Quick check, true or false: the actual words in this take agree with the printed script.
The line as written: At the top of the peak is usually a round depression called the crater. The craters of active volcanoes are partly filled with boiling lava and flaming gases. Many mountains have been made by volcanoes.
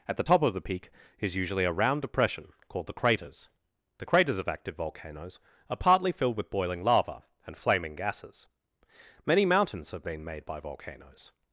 false